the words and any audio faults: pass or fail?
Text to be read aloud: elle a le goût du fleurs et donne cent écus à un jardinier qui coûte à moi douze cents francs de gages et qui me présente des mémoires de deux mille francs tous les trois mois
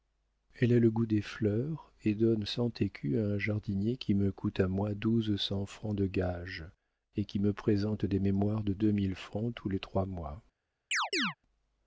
fail